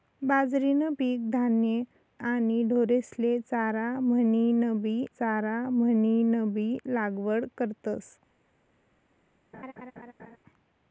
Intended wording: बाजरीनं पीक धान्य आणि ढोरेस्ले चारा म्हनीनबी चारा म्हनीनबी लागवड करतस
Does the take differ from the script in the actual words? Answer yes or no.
no